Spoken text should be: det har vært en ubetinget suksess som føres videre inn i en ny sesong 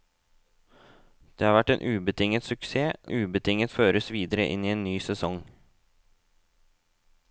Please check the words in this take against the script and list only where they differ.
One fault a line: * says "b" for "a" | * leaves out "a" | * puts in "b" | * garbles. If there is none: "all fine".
* says "ubetinget" for "som"